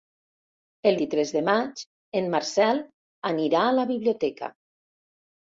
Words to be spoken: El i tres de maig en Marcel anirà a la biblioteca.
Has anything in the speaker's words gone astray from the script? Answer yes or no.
no